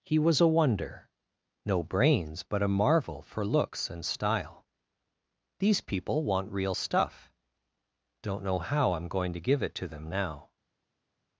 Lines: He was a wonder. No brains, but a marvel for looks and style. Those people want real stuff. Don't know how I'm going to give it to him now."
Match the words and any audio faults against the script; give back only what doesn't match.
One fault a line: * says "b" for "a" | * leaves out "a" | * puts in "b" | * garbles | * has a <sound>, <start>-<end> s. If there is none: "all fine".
* says "These" for "Those"
* says "them" for "him"